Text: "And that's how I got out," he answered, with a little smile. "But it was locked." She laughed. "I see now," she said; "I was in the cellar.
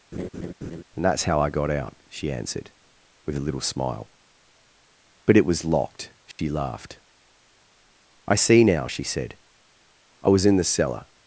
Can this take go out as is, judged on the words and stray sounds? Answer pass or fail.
fail